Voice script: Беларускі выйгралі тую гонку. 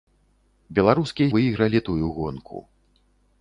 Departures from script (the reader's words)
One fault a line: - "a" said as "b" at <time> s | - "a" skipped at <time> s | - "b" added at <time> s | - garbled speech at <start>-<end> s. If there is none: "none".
none